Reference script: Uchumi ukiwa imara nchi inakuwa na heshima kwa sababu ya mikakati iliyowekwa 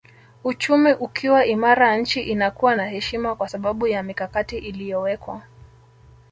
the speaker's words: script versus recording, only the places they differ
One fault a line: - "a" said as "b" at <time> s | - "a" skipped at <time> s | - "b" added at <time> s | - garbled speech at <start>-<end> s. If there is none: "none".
none